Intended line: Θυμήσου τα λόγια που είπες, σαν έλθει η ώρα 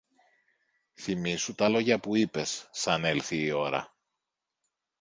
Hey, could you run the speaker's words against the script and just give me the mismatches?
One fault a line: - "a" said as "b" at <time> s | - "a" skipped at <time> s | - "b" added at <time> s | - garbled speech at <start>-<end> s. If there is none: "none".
none